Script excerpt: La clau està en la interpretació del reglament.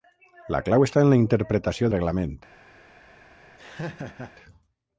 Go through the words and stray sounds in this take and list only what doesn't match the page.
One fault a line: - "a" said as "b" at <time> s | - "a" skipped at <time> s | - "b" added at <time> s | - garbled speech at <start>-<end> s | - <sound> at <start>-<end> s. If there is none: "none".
- "del" skipped at 1.9 s
- laugh at 3.6-4.3 s